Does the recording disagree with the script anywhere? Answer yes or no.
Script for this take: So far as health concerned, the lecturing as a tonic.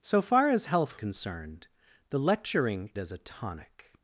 no